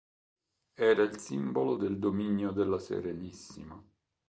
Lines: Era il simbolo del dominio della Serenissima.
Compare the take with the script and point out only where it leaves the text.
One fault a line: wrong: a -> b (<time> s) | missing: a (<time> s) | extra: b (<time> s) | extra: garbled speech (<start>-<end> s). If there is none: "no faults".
no faults